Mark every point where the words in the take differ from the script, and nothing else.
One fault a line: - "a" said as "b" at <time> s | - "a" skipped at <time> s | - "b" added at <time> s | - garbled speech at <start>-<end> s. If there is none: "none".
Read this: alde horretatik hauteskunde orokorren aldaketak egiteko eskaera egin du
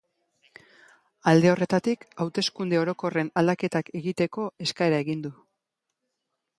none